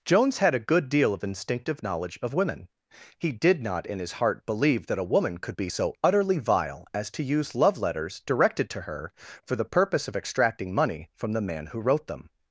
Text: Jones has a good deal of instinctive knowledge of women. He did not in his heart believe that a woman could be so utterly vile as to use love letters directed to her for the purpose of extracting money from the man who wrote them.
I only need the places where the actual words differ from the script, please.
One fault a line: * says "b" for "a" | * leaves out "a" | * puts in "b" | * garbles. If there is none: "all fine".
* says "had" for "has"